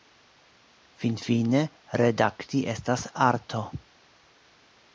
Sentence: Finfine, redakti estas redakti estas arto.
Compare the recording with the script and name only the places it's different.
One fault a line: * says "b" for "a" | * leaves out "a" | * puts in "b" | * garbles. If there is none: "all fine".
* leaves out "redakti estas"